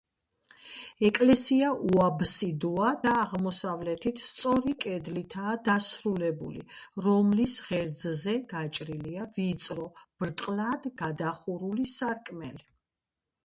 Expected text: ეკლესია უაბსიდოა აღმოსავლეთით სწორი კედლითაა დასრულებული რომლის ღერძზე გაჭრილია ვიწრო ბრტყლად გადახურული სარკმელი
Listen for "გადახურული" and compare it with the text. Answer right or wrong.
right